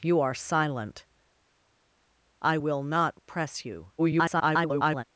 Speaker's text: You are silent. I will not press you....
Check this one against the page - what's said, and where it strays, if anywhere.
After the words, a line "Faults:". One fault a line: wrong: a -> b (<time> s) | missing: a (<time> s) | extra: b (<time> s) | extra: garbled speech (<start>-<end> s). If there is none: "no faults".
You are silent. I will not press you.... [garbled]
Faults:
extra: garbled speech (4.0-5.0 s)